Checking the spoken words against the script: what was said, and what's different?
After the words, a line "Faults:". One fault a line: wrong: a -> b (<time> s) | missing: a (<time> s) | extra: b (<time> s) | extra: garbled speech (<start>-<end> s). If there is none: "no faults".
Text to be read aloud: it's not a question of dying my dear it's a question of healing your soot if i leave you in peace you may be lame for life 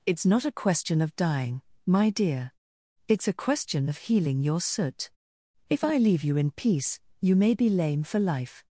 it's not a question of dying my dear it's a question of healing your soot if i leave you in peace you may be lame for life
Faults:
no faults